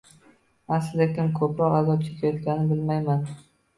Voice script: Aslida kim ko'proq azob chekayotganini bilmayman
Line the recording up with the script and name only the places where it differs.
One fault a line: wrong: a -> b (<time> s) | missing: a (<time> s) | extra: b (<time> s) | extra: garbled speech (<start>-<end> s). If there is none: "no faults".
no faults